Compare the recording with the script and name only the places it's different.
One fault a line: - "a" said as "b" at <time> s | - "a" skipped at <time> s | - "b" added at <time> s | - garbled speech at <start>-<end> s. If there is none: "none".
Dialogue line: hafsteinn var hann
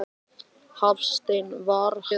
none